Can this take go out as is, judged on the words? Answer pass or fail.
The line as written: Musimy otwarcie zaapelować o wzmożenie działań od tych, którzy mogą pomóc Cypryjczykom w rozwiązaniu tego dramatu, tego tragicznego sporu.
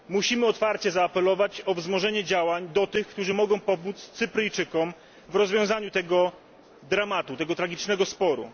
fail